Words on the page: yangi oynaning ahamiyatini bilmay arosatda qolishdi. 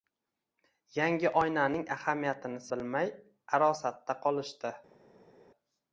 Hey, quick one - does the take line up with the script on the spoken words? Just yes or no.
yes